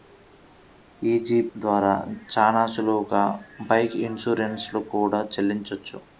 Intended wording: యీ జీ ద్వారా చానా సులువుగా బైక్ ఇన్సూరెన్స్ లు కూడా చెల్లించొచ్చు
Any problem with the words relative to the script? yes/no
no